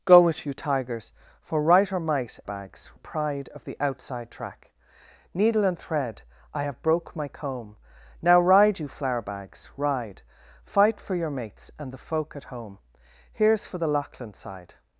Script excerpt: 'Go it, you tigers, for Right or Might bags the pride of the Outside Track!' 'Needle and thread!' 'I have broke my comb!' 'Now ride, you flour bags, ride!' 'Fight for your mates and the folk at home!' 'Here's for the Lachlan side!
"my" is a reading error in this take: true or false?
false